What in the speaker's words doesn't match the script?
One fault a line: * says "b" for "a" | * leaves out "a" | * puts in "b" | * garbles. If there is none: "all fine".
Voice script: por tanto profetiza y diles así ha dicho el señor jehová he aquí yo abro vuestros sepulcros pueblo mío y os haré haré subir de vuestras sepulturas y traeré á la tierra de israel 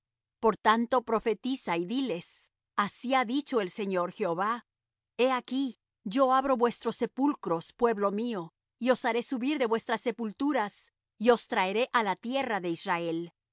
* leaves out "haré"
* puts in "os"